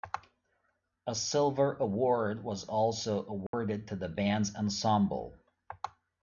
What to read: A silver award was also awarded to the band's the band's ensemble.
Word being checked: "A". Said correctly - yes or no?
yes